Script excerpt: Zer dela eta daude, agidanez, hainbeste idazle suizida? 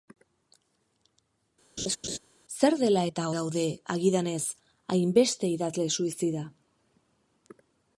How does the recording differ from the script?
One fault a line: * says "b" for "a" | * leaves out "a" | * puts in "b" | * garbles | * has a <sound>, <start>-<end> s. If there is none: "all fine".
* has a laugh, 1.8-2.2 s